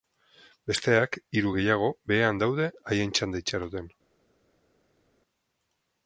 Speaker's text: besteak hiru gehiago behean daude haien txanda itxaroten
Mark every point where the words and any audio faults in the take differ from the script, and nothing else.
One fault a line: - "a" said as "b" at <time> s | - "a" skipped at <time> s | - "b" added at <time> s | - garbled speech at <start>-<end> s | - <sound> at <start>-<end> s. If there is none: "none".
none